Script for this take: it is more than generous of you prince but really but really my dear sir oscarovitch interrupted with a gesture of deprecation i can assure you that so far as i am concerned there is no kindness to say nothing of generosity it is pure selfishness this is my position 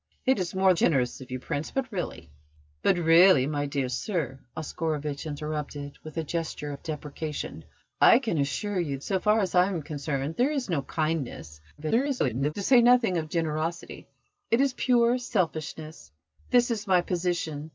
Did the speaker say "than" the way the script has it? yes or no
no